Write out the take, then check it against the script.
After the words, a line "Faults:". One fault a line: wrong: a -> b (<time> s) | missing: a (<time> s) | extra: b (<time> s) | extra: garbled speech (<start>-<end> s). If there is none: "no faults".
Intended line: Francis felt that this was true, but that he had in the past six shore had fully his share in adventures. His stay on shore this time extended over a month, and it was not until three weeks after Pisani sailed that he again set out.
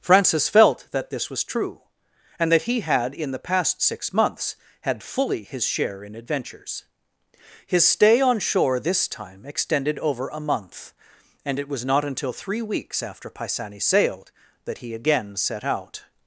Francis felt that this was true, and that he had in the past six months had fully his share in adventures. His stay on shore this time extended over a month, and it was not until three weeks after Pisani sailed that he again set out.
Faults:
wrong: but -> and (2.4 s)
wrong: shore -> months (4.1 s)